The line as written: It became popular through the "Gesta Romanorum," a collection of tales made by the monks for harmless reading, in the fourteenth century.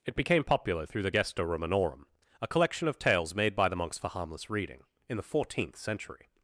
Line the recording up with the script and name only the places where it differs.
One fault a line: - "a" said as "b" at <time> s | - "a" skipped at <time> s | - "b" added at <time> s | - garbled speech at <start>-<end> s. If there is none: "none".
none